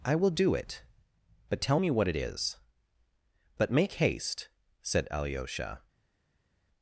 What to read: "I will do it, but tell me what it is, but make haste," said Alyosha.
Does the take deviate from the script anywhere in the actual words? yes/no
no